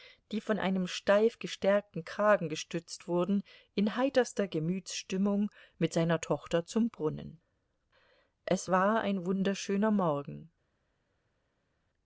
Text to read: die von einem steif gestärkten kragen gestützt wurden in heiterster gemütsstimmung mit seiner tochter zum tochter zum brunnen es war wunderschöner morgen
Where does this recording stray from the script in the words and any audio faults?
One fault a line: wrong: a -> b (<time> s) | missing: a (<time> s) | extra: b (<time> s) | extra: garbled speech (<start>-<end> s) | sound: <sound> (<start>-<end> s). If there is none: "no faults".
missing: tochter zum (6.9 s)
extra: ein (9.0 s)